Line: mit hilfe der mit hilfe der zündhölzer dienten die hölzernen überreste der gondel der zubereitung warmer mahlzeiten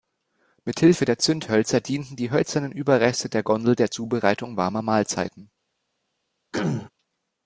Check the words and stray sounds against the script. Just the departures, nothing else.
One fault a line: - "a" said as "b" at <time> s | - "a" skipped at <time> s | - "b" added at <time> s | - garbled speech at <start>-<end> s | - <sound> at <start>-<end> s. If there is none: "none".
- "mit hilfe der" skipped at 1.2 s
- throat clearing at 6.5-6.9 s